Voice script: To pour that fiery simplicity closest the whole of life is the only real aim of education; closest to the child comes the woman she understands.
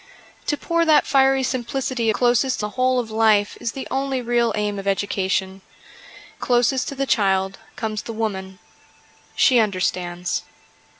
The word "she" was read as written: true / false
true